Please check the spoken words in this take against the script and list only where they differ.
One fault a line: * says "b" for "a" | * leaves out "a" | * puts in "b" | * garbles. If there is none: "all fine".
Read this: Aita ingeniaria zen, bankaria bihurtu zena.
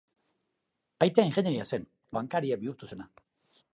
all fine